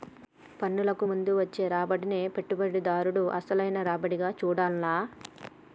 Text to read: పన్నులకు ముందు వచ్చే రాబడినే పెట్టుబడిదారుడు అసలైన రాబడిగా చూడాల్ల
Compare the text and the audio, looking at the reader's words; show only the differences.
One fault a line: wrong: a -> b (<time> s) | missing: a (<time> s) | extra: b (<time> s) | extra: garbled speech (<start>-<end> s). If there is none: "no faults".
no faults